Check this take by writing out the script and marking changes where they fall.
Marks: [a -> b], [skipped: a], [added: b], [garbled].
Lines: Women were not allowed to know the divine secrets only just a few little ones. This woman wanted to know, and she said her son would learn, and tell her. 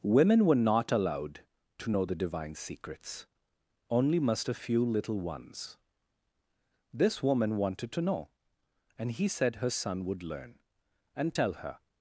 Women were not allowed to know the divine secrets only [just -> must] a few little ones. This woman wanted to know, and [she -> he] said her son would learn, and tell her.